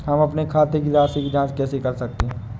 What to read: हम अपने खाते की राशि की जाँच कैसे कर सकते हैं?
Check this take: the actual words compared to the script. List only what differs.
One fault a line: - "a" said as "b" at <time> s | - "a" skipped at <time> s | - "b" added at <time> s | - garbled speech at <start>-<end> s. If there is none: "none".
none